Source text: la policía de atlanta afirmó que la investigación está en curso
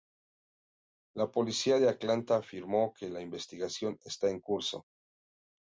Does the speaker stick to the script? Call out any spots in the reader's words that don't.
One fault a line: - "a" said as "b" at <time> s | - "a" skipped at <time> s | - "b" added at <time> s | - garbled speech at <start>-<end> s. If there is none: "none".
none